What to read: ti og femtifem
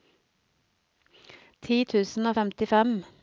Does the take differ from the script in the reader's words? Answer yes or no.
yes